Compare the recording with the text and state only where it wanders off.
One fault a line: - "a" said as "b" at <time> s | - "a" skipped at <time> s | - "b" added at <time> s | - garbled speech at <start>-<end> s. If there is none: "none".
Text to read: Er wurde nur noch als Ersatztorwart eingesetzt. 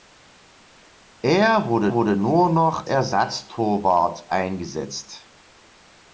- "wurde" added at 1.9 s
- "als" skipped at 2.9 s